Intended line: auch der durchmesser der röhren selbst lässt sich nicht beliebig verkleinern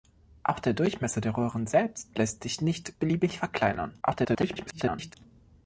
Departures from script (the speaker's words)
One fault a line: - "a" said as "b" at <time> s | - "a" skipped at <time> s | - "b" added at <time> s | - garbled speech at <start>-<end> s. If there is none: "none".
- garbled speech at 4.0-5.1 s